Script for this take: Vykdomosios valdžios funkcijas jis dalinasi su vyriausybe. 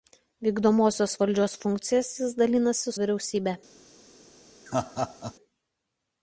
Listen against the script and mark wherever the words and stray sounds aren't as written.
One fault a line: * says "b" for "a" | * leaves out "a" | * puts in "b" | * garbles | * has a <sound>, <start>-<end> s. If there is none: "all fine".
* leaves out "su"
* has a laugh, 4.7-5.3 s